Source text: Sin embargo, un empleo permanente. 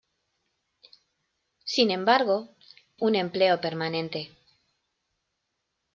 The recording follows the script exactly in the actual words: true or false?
true